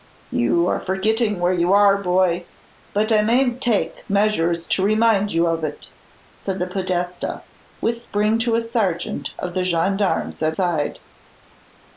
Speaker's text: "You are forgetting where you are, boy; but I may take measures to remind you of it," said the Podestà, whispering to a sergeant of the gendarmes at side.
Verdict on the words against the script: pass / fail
pass